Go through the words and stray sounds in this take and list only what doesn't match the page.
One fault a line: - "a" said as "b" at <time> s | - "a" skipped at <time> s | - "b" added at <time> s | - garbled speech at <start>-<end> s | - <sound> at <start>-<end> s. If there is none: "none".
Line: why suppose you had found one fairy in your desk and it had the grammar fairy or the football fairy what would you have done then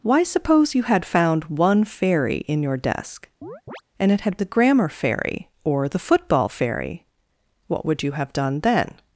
- chirp at 3.4-3.8 s